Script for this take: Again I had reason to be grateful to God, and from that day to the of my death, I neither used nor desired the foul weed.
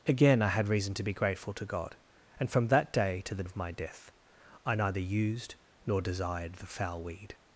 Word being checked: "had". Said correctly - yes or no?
yes